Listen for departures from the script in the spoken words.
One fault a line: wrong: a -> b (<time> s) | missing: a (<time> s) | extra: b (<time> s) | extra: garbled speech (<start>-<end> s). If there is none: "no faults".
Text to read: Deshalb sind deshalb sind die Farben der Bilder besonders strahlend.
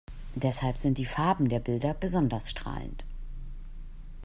missing: deshalb sind (1.0 s)